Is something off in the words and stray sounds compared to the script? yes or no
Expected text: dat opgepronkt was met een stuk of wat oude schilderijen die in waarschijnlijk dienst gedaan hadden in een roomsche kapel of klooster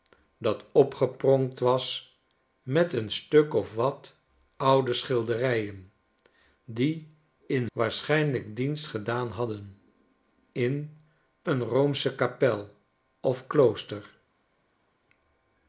no